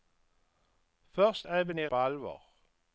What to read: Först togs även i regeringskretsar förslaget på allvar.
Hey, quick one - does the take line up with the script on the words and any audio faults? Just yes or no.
no